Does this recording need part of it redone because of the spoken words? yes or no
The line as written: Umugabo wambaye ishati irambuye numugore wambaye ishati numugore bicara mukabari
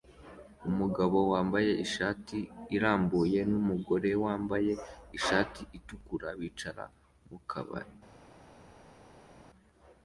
yes